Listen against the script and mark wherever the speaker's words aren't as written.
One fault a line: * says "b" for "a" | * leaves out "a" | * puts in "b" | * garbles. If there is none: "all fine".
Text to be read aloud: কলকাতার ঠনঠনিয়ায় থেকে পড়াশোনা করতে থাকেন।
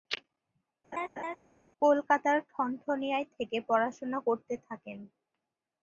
all fine